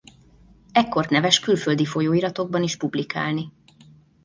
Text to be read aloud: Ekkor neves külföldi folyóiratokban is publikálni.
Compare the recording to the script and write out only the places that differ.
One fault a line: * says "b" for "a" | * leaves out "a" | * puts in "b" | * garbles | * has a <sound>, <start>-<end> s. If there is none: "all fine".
all fine